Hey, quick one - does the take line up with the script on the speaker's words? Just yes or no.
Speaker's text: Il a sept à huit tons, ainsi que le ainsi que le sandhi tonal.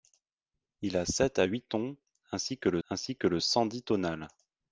yes